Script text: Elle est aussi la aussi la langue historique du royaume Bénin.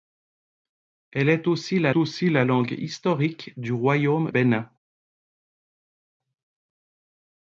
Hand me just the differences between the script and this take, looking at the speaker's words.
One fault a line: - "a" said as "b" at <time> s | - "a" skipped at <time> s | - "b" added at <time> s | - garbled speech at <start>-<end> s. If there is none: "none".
none